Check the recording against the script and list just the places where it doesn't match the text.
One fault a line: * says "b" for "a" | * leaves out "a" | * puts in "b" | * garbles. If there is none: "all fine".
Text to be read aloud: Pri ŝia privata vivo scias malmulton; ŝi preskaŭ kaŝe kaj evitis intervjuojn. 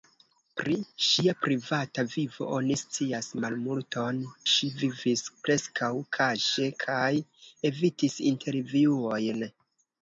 * puts in "oni"
* puts in "vivis"